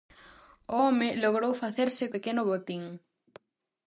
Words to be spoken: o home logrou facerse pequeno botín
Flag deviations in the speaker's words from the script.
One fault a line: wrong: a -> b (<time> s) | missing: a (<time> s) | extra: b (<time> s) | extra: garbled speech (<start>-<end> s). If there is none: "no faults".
no faults